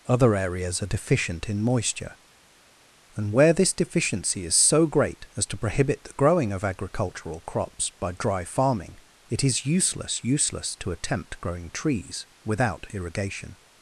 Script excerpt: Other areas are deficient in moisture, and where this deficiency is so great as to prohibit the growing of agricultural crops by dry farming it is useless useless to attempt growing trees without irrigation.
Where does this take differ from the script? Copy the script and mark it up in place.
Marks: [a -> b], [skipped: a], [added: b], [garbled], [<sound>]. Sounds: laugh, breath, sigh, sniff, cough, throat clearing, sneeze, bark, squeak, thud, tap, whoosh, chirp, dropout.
Other areas are deficient in moisture, and where this deficiency is so great as to prohibit the growing of agricultural crops by dry farming it is useless useless to attempt growing trees without irrigation.